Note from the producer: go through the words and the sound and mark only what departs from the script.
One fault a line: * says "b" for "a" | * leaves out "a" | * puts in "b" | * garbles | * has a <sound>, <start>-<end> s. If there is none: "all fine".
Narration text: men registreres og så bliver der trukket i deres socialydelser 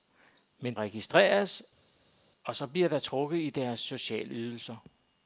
all fine